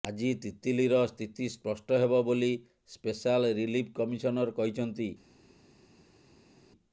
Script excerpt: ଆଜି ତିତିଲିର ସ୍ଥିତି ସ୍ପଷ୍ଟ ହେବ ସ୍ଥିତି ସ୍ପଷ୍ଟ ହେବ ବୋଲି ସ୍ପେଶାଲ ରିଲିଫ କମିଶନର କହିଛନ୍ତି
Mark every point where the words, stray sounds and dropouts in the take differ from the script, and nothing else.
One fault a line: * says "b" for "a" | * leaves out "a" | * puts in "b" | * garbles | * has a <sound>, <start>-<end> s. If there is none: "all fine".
* leaves out "ସ୍ଥିତି ସ୍ପଷ୍ଟ ହେବ"